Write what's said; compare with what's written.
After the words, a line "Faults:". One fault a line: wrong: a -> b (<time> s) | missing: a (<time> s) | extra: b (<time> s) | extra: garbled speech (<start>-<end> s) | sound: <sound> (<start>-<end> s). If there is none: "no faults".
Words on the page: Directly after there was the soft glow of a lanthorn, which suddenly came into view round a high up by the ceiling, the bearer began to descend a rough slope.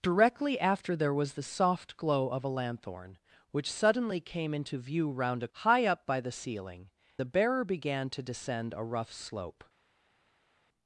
Directly after there was the soft glow of a lanthorn, which suddenly came into view round a high up by the ceiling, the bearer began to descend a rough slope.
Faults:
no faults